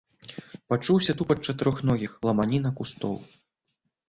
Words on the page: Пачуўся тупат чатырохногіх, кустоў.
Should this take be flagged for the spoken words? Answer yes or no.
yes